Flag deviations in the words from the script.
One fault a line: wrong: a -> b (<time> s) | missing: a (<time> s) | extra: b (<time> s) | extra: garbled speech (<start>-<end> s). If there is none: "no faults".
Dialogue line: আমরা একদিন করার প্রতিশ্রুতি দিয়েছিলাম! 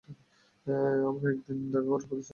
extra: দেখা (1.6 s)